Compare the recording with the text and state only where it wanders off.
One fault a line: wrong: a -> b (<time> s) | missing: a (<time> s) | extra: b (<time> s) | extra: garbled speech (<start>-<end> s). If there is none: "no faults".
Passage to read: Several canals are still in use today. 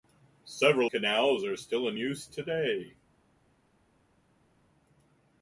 no faults